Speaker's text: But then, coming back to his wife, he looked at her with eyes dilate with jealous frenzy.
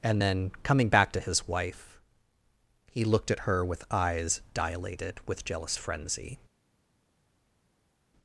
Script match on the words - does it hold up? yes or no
no